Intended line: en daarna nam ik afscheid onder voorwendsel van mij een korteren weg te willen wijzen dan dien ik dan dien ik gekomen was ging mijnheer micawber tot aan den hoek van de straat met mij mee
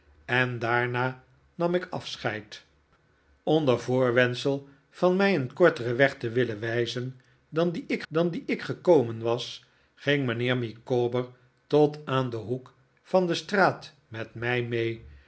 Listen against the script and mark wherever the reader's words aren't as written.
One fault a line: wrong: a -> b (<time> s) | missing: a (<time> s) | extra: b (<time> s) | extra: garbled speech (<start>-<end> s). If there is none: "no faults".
no faults